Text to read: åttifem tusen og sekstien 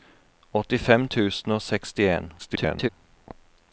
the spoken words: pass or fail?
fail